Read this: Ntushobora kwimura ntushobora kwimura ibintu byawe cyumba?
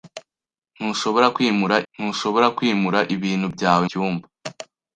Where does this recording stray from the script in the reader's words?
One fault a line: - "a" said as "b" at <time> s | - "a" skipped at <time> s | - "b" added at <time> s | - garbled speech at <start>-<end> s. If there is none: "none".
none